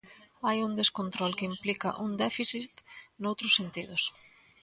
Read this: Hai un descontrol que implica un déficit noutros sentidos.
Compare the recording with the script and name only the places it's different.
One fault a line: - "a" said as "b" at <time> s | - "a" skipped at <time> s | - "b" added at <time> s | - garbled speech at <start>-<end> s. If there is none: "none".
none